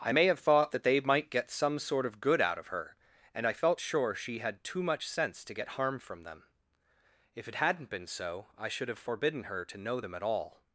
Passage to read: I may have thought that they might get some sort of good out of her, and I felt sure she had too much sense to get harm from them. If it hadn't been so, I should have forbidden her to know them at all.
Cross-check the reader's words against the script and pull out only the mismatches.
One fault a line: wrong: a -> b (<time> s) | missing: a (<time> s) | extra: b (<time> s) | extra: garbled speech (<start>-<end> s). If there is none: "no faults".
no faults